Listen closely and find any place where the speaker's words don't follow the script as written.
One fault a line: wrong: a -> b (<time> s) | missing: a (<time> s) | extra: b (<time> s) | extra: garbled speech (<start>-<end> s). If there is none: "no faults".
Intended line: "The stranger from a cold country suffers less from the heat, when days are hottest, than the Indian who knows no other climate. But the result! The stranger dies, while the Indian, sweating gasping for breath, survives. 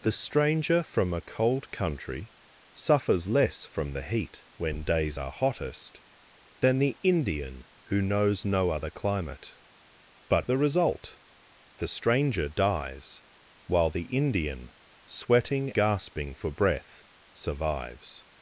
no faults